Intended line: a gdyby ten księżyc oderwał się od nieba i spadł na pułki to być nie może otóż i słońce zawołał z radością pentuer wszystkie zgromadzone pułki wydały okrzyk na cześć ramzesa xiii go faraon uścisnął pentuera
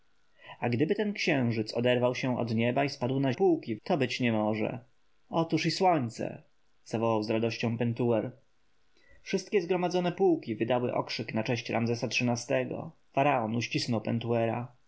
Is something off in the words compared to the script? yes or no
no